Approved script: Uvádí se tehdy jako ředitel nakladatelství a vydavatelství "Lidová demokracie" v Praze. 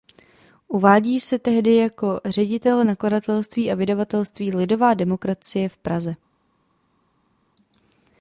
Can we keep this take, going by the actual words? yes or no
yes